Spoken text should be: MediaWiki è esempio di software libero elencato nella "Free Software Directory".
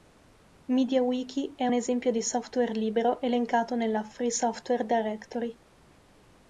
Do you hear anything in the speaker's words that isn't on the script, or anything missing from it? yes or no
no